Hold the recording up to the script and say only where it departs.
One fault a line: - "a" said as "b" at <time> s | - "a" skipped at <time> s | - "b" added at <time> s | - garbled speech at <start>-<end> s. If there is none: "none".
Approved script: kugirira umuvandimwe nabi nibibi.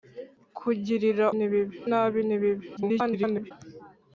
- "umuvandimwe" said as "nibibi" at 1.4 s
- garbled speech at 2.8-3.5 s